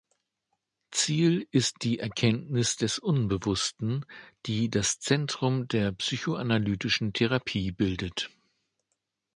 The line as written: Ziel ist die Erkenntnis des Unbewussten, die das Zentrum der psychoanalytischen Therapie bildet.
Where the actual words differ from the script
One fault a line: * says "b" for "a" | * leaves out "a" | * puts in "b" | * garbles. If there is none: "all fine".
all fine